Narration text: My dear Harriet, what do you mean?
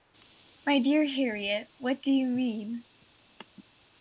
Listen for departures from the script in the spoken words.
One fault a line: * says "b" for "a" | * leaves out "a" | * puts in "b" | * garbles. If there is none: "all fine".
all fine